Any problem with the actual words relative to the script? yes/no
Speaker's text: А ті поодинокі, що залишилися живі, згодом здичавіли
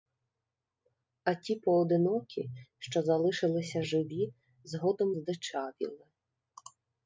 no